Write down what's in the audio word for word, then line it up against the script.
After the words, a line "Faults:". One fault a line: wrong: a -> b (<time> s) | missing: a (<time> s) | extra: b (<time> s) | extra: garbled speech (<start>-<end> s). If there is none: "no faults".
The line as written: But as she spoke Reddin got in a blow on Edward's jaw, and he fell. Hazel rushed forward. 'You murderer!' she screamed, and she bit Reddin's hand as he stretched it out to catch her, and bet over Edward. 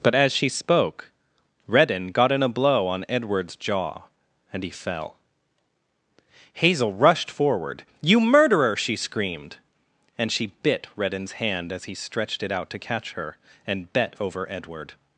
But as she spoke Reddin got in a blow on Edward's jaw, and he fell. Hazel rushed forward. 'You murderer!' she screamed, and she bit Reddin's hand as he stretched it out to catch her, and bet over Edward.
Faults:
no faults